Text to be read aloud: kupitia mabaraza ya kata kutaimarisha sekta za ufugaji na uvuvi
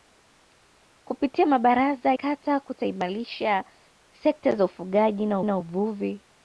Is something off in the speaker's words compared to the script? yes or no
yes